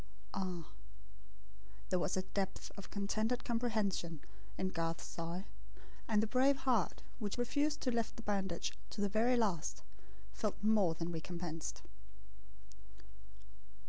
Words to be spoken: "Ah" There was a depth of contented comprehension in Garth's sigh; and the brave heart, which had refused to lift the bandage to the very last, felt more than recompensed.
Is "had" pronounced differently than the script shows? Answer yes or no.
yes